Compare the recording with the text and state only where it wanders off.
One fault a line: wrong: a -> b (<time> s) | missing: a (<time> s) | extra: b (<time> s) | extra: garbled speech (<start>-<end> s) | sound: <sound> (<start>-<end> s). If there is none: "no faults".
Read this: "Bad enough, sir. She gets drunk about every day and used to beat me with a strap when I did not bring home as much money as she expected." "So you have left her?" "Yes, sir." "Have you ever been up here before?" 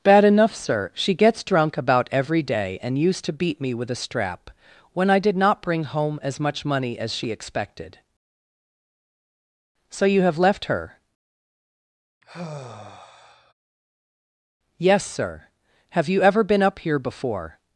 sound: sigh (12.2-13.5 s)